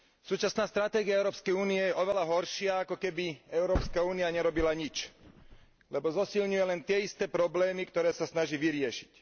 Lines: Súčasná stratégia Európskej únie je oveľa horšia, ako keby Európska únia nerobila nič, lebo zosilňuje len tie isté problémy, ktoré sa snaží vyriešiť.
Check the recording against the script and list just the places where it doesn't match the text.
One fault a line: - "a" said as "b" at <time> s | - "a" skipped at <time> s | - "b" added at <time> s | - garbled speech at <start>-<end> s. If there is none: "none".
none